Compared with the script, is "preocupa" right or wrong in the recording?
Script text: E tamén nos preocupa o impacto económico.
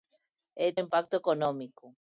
wrong